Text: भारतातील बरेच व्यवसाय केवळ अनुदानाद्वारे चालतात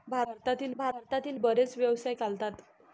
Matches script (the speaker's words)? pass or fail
fail